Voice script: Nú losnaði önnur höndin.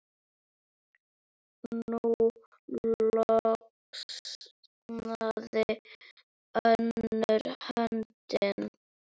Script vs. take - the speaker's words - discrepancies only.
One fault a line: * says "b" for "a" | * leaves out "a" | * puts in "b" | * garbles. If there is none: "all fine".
all fine